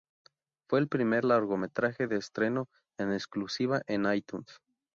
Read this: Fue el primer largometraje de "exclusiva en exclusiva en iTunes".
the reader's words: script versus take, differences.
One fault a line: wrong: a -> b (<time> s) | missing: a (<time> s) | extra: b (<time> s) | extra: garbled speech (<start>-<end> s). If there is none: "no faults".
wrong: exclusiva -> estreno (2.2 s)